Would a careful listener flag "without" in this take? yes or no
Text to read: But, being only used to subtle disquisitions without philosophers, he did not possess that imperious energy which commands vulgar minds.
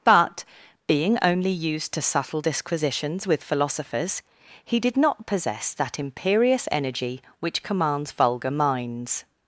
yes